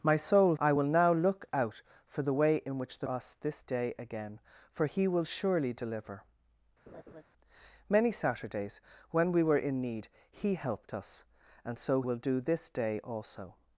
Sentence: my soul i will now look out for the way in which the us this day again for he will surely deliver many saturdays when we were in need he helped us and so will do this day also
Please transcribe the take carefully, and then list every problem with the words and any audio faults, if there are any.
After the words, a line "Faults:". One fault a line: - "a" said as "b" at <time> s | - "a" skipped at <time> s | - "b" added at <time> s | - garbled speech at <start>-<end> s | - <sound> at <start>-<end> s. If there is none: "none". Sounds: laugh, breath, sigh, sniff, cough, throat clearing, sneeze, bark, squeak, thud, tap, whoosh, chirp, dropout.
my soul i will now look out for the way in which the us this day again for he will surely deliver many saturdays when we were in need he helped us and so will do this day also
Faults:
- laugh at 6.9-7.2 s